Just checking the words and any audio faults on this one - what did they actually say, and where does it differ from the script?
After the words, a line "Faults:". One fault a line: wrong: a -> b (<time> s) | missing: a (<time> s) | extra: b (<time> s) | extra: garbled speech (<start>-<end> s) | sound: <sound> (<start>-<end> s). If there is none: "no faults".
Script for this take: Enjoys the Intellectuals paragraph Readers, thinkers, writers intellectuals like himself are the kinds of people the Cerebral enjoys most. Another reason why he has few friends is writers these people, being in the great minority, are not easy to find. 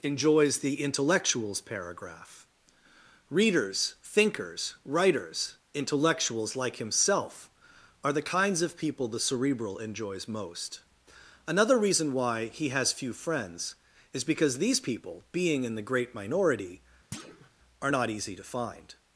Enjoys the Intellectuals paragraph Readers, thinkers, writers intellectuals like himself are the kinds of people the Cerebral enjoys most. Another reason why he has few friends is because these people, being in the great minority, are not easy to find.
Faults:
wrong: writers -> because (14.2 s)
sound: thud (17.1-17.5 s)